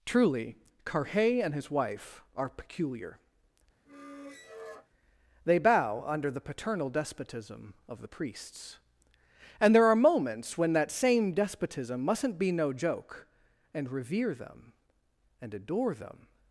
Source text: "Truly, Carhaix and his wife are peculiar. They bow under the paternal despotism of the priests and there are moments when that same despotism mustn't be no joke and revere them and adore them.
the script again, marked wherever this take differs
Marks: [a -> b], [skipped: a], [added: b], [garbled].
"Truly, Carhaix and his wife are peculiar. They bow under the paternal despotism of the priests and there are moments when that same despotism mustn't be no joke and revere them and adore them.